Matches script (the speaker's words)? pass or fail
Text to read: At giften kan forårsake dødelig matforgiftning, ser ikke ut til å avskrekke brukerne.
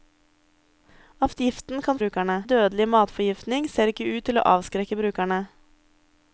fail